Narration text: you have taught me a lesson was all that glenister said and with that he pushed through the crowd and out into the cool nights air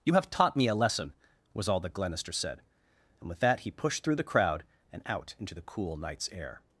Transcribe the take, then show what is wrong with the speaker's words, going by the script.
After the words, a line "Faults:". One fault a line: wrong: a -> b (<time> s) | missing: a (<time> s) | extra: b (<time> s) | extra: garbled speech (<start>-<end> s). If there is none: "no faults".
you have taught me a lesson was all that glenister said and with that he pushed through the crowd and out into the cool nights air
Faults:
no faults